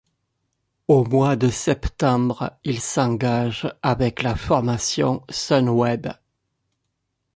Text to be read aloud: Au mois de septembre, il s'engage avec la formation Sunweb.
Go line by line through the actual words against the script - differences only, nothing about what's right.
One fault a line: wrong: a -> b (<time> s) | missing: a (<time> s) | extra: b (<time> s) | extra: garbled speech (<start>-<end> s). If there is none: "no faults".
no faults